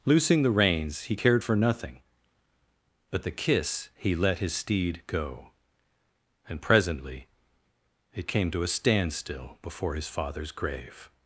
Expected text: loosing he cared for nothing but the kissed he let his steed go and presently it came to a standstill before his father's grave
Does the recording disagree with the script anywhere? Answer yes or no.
yes